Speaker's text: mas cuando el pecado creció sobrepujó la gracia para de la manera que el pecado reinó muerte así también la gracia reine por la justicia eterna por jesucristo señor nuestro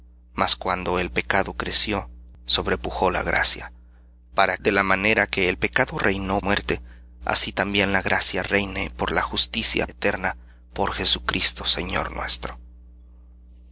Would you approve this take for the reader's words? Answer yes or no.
yes